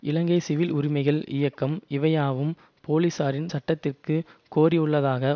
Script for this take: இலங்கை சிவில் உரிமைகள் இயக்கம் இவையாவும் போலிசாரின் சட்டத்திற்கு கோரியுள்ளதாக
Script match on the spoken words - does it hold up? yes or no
yes